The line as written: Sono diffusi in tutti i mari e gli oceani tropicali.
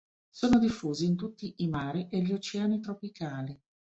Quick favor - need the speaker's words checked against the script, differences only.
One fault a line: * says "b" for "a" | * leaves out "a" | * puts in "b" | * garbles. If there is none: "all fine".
all fine